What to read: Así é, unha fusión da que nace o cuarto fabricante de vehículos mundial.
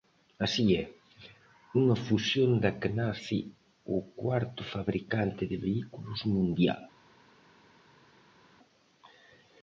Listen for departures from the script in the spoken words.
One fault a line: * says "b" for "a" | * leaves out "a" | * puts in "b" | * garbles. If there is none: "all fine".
all fine